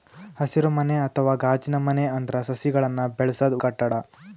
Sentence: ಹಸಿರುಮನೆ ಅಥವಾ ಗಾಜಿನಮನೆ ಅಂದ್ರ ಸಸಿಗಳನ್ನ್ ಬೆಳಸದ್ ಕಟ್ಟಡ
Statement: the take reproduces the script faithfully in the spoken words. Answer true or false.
true